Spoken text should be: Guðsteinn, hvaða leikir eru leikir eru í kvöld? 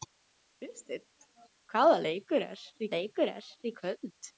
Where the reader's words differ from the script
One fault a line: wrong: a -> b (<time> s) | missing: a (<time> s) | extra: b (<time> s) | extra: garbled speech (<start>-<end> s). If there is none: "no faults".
no faults